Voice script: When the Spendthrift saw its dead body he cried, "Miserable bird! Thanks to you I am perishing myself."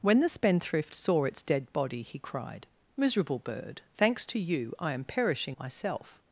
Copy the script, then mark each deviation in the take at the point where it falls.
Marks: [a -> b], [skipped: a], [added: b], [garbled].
When the Spendthrift saw its dead body he cried, "Miserable bird! Thanks to you I am perishing myself."